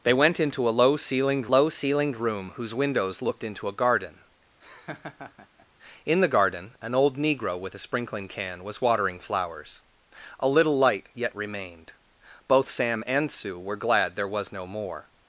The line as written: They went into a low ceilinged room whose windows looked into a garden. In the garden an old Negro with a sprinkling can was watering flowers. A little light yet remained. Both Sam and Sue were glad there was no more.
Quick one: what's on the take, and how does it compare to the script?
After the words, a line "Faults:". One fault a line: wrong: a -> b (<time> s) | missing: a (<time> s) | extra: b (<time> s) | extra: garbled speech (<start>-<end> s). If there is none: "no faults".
They went into a low ceilinged low ceilinged room whose windows looked into a garden. In the garden an old Negro with a sprinkling can was watering flowers. A little light yet remained. Both Sam and Sue were glad there was no more.
Faults:
extra: low ceilinged (1.5 s)